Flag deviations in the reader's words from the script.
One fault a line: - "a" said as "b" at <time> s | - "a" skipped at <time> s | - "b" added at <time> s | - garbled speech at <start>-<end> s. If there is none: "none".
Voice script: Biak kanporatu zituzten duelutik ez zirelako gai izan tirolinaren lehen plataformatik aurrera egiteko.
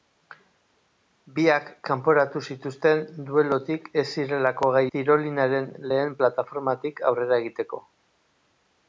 - "izan" skipped at 4.8 s